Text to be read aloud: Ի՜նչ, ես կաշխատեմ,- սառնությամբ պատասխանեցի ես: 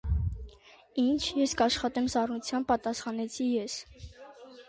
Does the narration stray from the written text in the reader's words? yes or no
no